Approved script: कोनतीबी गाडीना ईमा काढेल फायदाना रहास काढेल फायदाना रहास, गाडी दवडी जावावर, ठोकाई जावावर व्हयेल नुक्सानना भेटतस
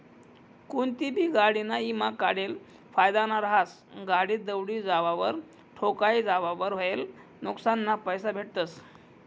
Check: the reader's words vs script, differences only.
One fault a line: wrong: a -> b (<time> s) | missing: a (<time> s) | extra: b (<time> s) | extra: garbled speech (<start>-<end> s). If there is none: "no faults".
missing: काढेल फायदाना रहास (3.8 s)
extra: पैसा (8.0 s)